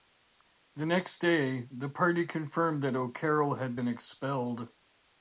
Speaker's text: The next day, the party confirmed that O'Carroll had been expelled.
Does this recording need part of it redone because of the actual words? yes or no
no